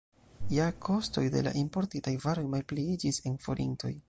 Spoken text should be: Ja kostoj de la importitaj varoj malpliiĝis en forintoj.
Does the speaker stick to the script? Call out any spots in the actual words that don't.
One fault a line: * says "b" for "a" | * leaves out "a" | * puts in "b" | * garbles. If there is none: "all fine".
all fine